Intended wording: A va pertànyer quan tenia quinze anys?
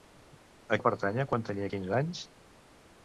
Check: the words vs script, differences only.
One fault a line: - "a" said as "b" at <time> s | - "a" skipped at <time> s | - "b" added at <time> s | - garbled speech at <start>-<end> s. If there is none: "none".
none